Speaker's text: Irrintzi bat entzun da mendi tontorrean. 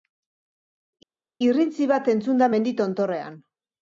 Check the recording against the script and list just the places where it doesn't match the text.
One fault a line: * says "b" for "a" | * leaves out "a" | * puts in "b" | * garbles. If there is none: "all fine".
all fine